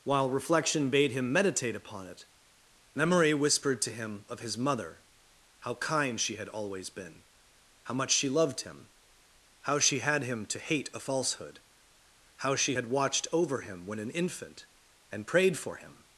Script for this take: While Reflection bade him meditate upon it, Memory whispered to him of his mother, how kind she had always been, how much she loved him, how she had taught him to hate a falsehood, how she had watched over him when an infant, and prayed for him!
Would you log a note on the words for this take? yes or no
yes